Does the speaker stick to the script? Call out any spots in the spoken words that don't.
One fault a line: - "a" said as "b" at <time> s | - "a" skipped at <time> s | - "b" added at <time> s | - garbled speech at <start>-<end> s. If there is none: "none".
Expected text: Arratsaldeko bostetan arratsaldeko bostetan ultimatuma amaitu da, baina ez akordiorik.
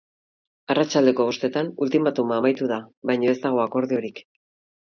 - "arratsaldeko bostetan" skipped at 1.7 s
- "dago" added at 3.5 s